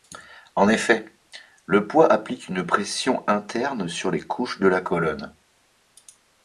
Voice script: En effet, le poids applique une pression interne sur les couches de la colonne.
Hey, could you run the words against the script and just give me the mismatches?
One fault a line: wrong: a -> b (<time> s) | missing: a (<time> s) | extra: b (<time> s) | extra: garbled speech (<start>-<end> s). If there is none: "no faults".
no faults